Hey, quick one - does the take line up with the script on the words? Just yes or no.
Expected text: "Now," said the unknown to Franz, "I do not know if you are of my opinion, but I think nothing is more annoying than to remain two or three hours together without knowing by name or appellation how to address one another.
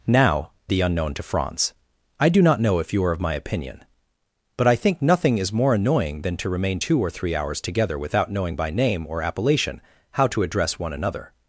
no